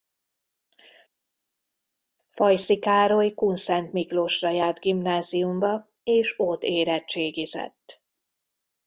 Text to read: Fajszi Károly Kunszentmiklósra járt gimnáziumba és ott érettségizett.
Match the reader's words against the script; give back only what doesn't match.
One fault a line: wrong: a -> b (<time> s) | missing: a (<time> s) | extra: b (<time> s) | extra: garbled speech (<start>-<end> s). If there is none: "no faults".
no faults